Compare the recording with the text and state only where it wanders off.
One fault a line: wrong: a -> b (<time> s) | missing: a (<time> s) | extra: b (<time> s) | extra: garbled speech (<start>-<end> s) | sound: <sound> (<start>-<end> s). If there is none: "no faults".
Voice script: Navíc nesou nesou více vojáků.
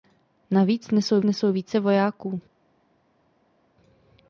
no faults